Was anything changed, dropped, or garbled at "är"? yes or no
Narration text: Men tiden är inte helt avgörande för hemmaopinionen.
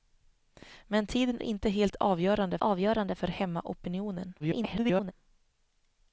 yes